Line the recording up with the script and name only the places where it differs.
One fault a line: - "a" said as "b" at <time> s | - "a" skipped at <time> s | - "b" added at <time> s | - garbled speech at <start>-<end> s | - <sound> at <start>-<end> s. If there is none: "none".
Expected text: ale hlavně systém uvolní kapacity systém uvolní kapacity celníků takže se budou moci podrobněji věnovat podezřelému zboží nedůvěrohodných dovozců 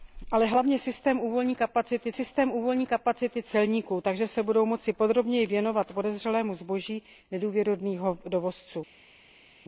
none